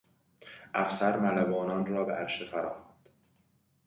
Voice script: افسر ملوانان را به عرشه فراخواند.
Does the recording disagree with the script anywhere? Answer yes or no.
no